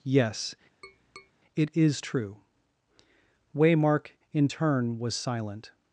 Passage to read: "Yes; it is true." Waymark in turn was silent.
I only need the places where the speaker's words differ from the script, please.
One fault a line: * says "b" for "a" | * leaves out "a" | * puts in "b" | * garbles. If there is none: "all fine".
all fine